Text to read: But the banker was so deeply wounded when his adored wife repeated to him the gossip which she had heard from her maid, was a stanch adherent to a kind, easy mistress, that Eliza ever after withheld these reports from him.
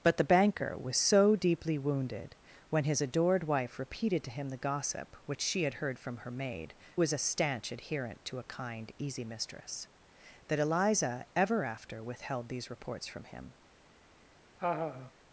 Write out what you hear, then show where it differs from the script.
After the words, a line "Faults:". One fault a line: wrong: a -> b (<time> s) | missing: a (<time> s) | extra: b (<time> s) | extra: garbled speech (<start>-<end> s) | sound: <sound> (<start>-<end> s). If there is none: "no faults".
But the banker was so deeply wounded when his adored wife repeated to him the gossip which she had heard from her maid, was a stanch adherent to a kind, easy mistress, that Eliza ever after withheld these reports from him.
Faults:
sound: laugh (14.6-15.1 s)